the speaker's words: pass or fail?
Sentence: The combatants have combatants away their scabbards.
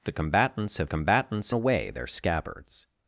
pass